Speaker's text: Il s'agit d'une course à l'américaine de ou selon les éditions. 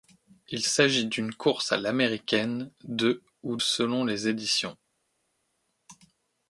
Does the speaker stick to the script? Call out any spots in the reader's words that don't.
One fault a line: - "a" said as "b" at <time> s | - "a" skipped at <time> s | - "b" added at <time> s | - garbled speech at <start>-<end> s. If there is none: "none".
none